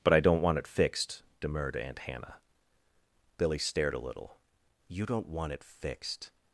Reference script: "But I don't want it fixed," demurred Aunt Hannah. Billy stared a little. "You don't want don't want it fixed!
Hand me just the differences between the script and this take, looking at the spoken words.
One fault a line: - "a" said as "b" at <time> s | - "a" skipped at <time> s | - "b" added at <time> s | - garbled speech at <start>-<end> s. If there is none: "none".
- "don't want" skipped at 5.5 s